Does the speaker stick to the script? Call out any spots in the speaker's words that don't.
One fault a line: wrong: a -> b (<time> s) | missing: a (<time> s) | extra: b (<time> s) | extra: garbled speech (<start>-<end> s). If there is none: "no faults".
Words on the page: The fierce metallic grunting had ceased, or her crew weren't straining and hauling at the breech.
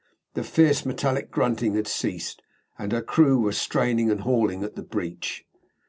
wrong: or -> and (2.8 s)
wrong: weren't -> were (3.4 s)